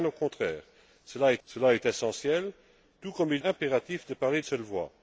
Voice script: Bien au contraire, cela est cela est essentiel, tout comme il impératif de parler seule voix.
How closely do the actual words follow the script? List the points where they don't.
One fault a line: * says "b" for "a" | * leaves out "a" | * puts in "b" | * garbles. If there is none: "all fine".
all fine